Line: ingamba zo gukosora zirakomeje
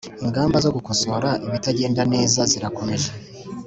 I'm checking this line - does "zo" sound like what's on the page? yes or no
yes